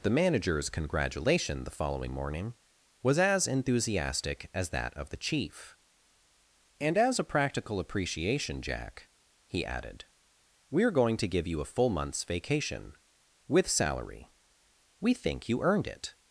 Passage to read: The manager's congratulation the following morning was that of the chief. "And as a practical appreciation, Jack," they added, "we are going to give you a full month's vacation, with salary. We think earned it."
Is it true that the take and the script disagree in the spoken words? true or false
true